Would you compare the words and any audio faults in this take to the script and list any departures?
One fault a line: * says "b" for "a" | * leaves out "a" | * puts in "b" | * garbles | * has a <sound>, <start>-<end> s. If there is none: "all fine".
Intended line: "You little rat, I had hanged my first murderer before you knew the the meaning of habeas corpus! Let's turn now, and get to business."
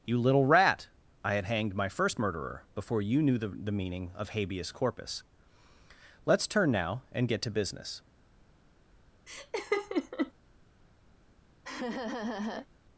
* has a laugh, 9.3-10.3 s
* has a laugh, 11.6-12.7 s